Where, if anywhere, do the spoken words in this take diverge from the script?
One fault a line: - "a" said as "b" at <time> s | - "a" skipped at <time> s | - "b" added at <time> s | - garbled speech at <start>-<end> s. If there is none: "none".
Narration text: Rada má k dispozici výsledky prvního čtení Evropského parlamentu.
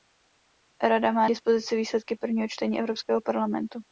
none